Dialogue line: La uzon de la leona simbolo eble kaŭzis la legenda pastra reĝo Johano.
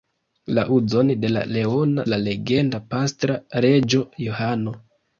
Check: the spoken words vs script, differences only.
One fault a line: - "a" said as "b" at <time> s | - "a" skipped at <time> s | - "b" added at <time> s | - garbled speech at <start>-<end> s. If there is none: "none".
- "simbolo eble kaŭzis" skipped at 2.0 s